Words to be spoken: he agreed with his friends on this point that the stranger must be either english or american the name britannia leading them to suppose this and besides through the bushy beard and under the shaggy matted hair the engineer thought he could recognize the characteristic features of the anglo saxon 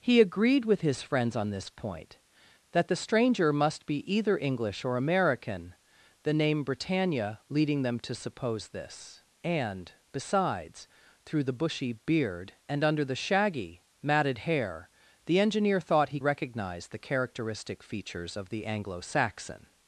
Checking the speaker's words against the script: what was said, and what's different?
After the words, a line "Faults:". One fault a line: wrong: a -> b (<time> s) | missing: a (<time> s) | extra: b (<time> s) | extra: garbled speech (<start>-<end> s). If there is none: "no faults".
he agreed with his friends on this point that the stranger must be either english or american the name britannia leading them to suppose this and besides through the bushy beard and under the shaggy matted hair the engineer thought he recognize the characteristic features of the anglo saxon
Faults:
missing: could (16.2 s)